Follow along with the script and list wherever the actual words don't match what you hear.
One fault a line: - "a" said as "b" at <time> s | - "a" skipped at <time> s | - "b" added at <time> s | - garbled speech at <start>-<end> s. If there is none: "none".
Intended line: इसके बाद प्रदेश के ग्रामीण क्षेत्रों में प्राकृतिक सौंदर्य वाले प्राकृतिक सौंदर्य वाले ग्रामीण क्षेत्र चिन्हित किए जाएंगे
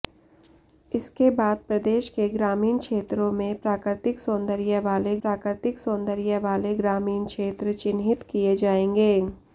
none